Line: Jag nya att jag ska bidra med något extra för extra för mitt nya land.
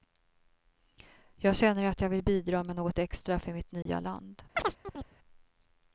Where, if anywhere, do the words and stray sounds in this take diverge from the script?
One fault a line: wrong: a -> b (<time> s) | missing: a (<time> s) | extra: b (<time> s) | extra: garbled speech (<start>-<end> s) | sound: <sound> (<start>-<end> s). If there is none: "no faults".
wrong: nya -> känner (1.6 s)
wrong: ska -> vill (2.1 s)
missing: extra för (3.5 s)
sound: dropout (3.8-3.9 s)
sound: chirp (4.5-5.2 s)